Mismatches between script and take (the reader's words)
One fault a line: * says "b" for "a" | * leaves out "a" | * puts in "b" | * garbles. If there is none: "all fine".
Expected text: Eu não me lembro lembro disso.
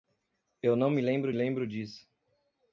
all fine